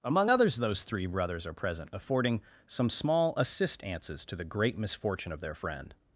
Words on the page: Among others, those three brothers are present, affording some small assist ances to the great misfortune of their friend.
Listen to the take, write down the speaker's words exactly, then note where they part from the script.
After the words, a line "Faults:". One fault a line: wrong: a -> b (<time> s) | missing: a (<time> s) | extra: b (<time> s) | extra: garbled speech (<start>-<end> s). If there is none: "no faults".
Among others, those three brothers are present, affording some small assist ances to the great misfortune of their friend.
Faults:
no faults